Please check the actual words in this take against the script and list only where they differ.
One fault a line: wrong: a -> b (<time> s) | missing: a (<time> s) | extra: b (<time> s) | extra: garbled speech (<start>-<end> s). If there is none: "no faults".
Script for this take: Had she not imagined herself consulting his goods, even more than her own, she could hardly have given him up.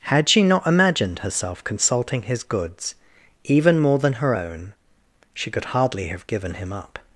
no faults